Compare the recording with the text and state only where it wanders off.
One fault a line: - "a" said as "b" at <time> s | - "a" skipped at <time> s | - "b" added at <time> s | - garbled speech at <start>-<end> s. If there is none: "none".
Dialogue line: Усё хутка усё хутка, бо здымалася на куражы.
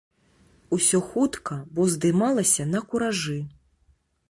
- "усё хутка" skipped at 1.6 s